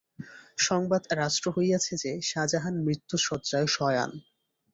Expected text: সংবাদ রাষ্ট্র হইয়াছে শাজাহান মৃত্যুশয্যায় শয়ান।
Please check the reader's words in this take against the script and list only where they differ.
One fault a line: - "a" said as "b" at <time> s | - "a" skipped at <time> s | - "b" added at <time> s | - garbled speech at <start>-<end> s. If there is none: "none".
- "যে" added at 1.9 s